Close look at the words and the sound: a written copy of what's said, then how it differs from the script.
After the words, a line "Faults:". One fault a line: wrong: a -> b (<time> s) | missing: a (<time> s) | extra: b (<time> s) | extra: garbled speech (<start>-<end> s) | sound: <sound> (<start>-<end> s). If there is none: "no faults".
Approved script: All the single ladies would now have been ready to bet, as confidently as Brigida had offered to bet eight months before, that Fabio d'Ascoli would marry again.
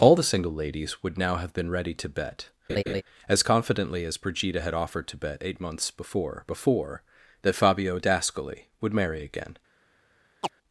All the single ladies would now have been ready to bet, as confidently as Brigida had offered to bet eight months before before, that Fabio d'Ascoli would marry again.
Faults:
sound: laugh (2.7-3.0 s)
extra: before (6.4 s)
sound: chirp (10.4-10.5 s)